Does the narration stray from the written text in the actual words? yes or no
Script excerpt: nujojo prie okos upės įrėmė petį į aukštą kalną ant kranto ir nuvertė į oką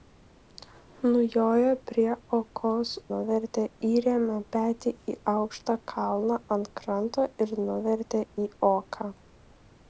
yes